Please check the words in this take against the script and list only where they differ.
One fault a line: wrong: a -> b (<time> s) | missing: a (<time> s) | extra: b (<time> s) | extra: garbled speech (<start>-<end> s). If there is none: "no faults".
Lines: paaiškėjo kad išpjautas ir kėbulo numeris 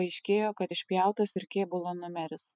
no faults